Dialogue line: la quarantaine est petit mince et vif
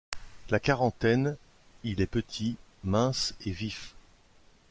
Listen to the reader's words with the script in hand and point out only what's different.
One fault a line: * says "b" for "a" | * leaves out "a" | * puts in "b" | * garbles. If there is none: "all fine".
* puts in "il"